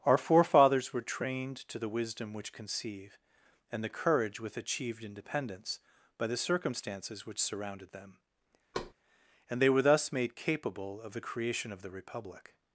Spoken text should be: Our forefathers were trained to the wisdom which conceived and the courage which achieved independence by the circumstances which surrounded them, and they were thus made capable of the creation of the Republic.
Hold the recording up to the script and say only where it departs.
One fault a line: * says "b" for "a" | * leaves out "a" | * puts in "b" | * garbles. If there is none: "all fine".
* says "conceive" for "conceived"
* says "with" for "which"